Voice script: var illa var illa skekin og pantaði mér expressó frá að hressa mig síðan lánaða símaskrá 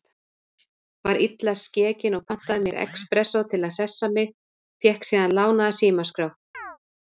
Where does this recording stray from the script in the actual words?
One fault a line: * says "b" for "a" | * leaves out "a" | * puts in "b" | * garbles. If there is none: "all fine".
* leaves out "var illa"
* says "til" for "frá"
* puts in "fékk"